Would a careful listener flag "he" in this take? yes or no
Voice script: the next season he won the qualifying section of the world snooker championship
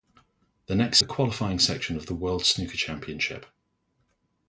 yes